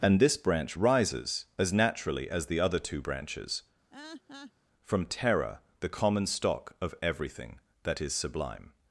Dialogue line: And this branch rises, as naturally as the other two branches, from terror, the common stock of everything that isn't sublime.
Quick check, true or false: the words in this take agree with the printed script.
false